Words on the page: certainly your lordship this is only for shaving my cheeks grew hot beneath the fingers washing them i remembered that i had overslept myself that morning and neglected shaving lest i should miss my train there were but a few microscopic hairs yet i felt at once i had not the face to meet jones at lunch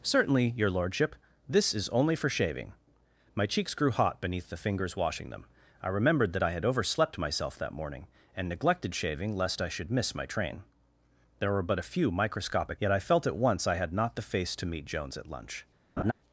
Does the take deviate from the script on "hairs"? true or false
true